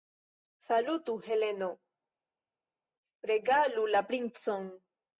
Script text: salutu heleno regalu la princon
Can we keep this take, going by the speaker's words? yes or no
yes